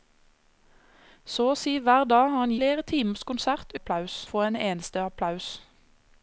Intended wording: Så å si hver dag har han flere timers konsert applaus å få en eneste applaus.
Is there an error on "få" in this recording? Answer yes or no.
no